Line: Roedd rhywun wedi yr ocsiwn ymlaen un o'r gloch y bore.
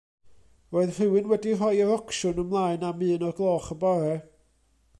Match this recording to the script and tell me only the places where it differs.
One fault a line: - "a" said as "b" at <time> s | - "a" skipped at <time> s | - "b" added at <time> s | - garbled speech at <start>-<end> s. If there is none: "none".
- "rhoi" added at 1.6 s
- "am" added at 2.9 s